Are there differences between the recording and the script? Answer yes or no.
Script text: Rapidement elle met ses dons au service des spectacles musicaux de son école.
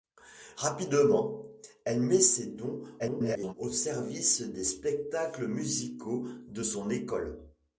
yes